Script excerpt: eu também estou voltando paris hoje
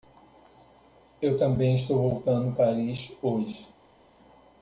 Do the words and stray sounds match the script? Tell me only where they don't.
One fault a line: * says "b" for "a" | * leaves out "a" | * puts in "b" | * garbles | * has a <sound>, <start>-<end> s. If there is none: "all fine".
all fine